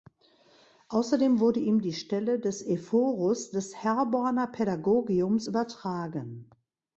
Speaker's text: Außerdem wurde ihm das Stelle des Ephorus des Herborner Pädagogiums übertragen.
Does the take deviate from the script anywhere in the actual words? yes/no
yes